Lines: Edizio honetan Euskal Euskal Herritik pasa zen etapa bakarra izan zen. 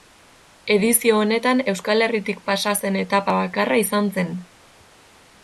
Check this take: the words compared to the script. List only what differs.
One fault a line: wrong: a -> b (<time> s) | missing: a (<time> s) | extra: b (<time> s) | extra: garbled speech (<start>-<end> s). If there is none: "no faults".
missing: Euskal (2.0 s)